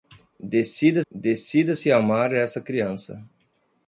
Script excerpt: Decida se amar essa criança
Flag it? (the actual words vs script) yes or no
yes